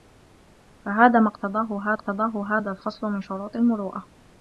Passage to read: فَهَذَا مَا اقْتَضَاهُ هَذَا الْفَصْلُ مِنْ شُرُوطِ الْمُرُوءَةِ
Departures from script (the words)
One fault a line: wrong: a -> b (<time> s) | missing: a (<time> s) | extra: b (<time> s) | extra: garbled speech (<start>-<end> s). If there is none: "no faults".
extra: اقْتَضَاهُ (1.9 s)